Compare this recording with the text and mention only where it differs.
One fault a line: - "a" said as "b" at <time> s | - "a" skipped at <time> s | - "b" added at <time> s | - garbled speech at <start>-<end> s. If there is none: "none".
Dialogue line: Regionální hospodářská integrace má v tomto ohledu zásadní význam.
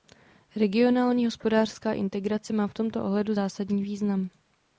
none